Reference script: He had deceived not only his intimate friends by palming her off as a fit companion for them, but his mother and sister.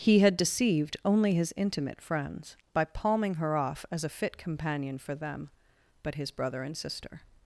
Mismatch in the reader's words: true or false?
true